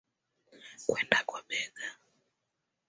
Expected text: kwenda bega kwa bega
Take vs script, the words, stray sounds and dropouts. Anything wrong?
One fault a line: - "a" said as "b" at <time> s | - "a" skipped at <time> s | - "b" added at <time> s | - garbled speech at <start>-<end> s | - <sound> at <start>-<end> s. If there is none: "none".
- "bega" skipped at 1.2 s